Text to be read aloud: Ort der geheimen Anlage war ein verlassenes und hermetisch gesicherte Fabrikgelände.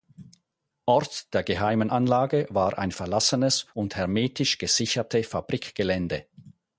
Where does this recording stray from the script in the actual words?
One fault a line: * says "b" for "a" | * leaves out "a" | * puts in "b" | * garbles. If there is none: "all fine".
all fine